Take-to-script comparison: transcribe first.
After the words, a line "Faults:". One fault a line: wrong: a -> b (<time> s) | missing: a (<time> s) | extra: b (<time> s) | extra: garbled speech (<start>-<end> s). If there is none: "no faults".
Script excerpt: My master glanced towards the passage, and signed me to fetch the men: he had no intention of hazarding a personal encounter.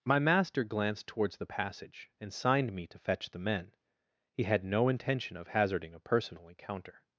My master glanced towards the passage, and signed me to fetch the men: he had no intention of hazarding a personal encounter.
Faults:
no faults